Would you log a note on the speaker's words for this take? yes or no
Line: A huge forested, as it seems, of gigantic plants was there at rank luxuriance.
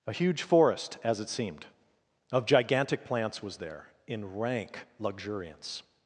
yes